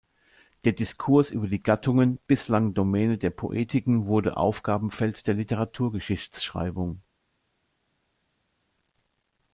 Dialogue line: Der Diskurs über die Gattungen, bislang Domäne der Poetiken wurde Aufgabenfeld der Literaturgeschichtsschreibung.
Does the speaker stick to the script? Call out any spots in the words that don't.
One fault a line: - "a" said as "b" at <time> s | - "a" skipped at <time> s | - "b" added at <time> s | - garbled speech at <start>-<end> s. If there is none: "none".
none